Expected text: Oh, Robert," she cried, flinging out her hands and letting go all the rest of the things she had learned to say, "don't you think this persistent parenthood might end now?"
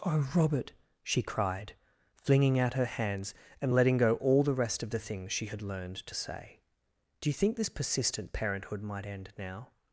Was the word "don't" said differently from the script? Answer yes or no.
yes